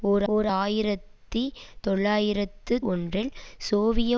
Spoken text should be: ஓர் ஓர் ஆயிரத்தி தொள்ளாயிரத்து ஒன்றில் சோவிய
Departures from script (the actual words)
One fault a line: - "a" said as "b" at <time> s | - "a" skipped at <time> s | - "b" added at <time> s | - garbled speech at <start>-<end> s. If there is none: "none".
none